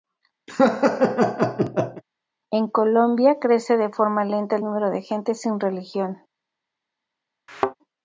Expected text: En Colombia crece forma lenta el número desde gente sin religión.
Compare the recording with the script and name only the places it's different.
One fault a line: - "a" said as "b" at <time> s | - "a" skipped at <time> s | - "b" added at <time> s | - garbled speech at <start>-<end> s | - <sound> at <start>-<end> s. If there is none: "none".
- laugh at 0.5-2.0 s
- "de" added at 3.8 s
- "desde" said as "de" at 4.9 s
- thud at 7.5-7.8 s